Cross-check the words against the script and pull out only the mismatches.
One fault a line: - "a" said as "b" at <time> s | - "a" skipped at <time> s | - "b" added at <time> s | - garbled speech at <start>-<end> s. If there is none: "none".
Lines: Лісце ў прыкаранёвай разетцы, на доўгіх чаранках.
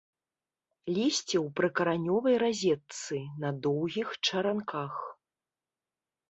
none